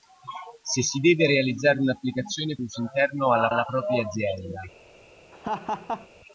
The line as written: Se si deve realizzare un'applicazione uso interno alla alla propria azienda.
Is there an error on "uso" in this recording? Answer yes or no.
no